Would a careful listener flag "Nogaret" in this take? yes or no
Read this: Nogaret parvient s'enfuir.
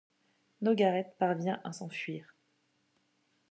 no